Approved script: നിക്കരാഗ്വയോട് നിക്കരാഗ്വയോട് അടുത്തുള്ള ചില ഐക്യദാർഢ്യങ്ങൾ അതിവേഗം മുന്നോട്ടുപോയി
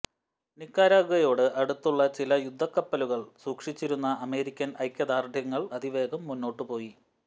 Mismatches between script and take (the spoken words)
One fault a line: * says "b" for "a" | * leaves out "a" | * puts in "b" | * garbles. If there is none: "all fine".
* leaves out "നിക്കരാഗ്വയോട്"
* puts in "യുദ്ധക്കപ്പലുകൾ സൂക്ഷിച്ചിരുന്ന അമേരിക്കൻ"